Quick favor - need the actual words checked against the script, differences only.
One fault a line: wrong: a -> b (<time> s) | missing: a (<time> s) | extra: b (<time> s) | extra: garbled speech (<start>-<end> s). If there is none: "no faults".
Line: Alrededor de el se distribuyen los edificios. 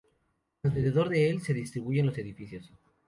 no faults